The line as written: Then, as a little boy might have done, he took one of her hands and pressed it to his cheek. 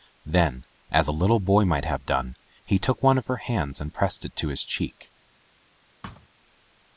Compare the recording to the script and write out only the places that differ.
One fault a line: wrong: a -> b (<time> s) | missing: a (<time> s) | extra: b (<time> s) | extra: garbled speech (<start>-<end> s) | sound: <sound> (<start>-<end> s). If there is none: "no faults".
sound: thud (6.0-6.3 s)